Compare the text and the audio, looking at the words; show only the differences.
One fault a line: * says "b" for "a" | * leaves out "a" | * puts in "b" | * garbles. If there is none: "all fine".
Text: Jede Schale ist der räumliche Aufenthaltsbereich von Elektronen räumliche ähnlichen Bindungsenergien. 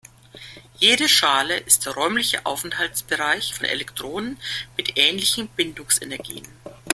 * says "mit" for "räumliche"